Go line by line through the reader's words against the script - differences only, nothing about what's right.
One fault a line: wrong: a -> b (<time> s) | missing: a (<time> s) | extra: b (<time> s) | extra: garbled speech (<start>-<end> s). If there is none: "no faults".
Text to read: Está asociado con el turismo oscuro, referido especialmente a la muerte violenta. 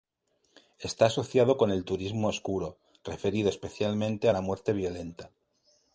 no faults